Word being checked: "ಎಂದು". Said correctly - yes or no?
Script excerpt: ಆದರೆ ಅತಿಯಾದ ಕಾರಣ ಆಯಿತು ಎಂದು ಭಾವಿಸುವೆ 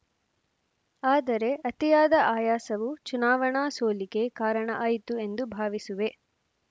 yes